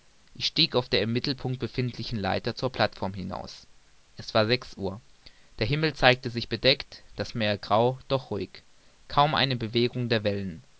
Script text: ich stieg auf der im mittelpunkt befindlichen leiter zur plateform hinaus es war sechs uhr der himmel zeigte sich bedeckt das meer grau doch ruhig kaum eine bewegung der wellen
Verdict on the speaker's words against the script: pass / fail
pass